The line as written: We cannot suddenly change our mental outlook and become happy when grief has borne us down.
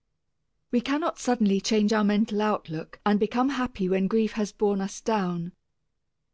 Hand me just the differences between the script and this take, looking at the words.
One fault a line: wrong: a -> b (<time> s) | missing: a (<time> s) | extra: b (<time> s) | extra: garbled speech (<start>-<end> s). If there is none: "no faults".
no faults